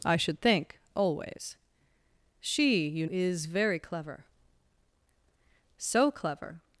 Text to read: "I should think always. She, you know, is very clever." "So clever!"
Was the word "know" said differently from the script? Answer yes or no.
yes